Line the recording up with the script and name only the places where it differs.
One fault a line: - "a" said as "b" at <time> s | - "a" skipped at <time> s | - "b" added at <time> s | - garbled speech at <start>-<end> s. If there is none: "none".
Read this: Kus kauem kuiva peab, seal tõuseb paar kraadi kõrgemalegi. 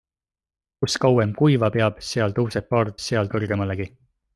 - "kraadi" said as "seal" at 3.0 s